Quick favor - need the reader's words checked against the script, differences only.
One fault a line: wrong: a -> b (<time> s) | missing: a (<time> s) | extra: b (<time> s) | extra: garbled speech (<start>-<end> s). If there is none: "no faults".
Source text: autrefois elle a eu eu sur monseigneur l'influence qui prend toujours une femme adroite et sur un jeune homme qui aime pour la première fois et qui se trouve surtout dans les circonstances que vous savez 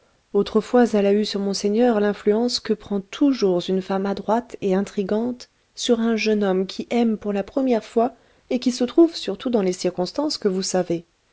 missing: eu (1.2 s)
wrong: qui -> que (2.6 s)
extra: intrigante (4.7 s)